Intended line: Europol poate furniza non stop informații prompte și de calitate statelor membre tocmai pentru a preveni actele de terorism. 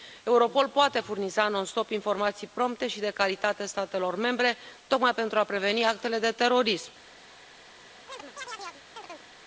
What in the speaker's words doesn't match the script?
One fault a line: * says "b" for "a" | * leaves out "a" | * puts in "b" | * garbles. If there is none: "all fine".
all fine